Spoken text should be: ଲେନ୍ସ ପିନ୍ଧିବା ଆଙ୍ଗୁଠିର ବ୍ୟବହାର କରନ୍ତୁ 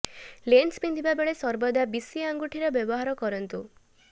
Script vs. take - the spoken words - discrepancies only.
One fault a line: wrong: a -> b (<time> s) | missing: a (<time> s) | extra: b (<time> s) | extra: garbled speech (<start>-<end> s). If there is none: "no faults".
extra: ବେଳେ ସର୍ବଦା ବିଶି (1.2 s)